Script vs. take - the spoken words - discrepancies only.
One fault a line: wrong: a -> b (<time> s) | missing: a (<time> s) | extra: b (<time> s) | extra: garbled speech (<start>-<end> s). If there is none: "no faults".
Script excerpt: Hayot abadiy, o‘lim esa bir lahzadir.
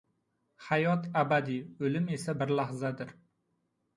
no faults